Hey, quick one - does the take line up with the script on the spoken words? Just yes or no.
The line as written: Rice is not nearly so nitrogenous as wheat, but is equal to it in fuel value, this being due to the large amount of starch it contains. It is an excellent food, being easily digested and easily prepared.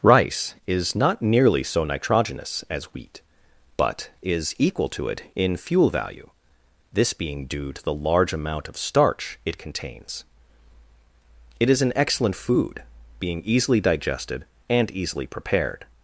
yes